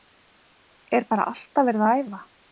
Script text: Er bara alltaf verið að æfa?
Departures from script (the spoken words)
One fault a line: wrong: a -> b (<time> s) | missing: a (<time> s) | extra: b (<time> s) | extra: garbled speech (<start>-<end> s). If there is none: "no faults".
no faults